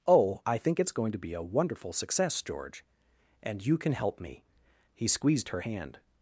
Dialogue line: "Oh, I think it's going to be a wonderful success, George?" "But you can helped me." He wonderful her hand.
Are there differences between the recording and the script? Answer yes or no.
yes